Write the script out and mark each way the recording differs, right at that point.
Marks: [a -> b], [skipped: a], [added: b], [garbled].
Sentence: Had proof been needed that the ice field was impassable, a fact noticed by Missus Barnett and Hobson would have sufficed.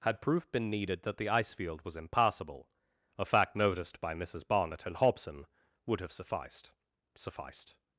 Had proof been needed that the ice field was impassable, a fact noticed by Missus Barnett and Hobson would have sufficed. [added: sufficed]